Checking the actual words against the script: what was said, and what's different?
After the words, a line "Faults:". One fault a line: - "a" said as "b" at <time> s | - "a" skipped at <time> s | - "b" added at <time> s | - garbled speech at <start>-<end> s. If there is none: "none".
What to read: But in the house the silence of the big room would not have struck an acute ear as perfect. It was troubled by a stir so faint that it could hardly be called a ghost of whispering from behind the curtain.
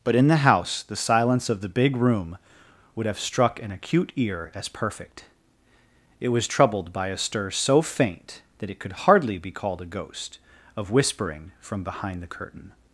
But in the house the silence of the big room would have struck an acute ear as perfect. It was troubled by a stir so faint that it could hardly be called a ghost of whispering from behind the curtain.
Faults:
- "not" skipped at 3.0 s